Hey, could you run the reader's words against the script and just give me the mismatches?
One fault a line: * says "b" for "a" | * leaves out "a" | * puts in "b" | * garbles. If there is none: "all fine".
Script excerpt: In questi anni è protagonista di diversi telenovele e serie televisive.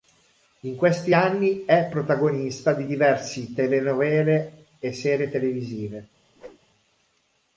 all fine